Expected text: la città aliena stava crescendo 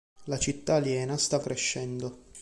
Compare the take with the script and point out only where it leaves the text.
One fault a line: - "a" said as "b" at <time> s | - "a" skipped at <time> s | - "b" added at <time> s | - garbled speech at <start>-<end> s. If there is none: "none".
none